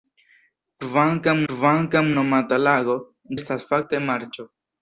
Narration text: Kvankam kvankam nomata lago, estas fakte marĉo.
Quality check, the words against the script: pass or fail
pass